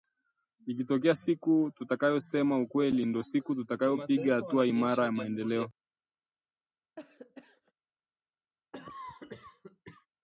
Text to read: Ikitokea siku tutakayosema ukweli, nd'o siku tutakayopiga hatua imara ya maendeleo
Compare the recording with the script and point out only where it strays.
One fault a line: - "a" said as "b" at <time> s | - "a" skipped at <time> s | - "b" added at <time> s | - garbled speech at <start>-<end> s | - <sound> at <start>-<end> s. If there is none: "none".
- cough at 7.0-7.7 s
- cough at 8.7-10.1 s